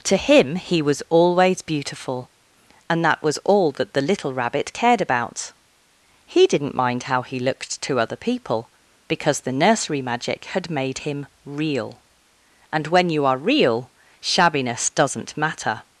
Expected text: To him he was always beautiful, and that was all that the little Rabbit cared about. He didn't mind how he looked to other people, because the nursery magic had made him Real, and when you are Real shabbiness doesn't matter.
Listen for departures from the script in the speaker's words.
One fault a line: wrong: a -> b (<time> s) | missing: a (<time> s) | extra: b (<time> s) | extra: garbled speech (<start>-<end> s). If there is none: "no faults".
no faults